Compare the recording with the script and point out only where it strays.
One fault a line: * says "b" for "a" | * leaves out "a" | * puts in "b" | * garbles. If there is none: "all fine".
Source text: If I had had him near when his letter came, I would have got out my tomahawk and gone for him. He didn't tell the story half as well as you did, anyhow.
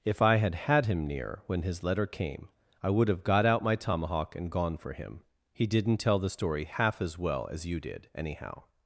all fine